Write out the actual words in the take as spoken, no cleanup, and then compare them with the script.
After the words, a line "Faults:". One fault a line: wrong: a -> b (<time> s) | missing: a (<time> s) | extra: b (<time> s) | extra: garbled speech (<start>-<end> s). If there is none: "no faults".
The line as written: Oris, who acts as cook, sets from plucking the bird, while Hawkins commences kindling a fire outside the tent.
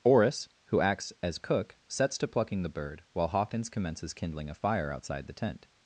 Oris, who acts as cook, sets to plucking the bird, while Hawkins commences kindling a fire outside the tent.
Faults:
wrong: from -> to (2.2 s)